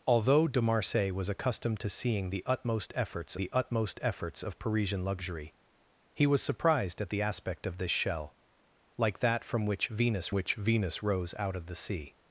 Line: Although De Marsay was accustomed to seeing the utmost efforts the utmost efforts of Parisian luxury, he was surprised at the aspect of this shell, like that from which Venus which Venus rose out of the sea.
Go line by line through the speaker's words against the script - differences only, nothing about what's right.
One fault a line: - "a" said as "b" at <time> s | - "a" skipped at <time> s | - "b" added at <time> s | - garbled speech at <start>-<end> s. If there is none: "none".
none